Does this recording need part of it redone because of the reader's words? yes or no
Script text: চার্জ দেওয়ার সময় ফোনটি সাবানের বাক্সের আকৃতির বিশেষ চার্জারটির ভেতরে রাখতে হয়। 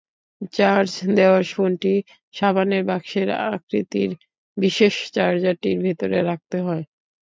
yes